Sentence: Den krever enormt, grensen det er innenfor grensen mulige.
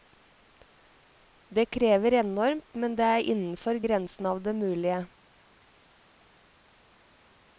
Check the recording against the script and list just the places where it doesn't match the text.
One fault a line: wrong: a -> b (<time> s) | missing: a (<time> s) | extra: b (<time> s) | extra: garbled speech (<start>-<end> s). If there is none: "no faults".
wrong: Den -> Det (1.5 s)
wrong: grensen -> men (2.7 s)
extra: av det (4.3 s)